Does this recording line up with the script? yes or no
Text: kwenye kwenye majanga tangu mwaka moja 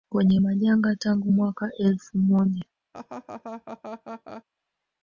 no